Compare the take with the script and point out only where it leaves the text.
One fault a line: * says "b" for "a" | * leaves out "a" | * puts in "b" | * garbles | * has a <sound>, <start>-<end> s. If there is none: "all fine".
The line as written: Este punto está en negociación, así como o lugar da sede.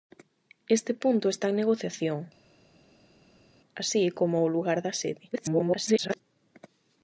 * garbles